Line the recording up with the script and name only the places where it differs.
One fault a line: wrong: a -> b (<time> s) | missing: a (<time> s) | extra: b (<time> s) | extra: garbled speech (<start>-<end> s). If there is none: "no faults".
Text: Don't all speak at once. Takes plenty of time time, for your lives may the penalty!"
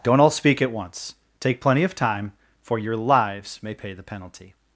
wrong: Takes -> Take (1.4 s)
missing: time (2.3 s)
extra: pay (3.7 s)